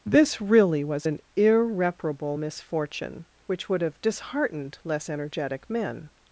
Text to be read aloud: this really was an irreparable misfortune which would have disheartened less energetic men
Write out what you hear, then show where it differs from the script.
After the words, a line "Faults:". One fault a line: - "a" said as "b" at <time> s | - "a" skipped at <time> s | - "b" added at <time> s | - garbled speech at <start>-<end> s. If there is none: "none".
this really was an irreparable misfortune which would have disheartened less energetic men
Faults:
none